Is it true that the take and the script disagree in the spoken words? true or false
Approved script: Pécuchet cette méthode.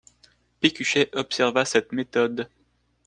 true